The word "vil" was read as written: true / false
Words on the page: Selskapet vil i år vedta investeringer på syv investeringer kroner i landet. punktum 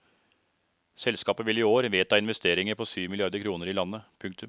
true